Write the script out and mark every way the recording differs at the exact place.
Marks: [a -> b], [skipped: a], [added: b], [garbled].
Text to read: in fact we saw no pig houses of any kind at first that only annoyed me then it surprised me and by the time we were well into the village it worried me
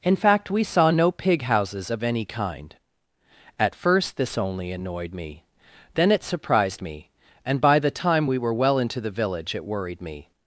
in fact we saw no pig houses of any kind at first [that -> this] only annoyed me then it surprised me and by the time we were well into the village it worried me